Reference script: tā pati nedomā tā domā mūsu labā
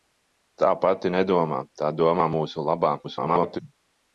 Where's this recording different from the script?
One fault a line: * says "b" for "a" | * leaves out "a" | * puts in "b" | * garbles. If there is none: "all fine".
* garbles